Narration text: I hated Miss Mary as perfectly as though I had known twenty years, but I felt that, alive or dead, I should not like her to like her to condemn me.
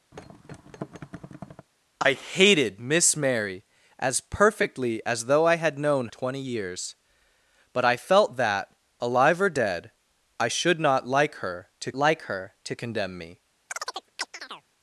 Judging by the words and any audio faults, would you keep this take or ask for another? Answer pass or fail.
fail